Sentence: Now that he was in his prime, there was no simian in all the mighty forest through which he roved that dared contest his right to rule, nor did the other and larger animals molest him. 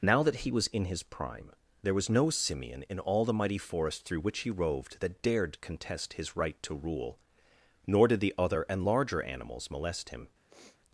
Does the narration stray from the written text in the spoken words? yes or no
no